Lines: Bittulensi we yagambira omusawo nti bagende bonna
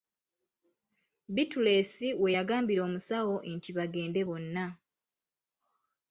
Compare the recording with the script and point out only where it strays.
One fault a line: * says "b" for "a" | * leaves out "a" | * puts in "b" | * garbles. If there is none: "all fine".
all fine